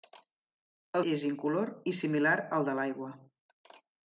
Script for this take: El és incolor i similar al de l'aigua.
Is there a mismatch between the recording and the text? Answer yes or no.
no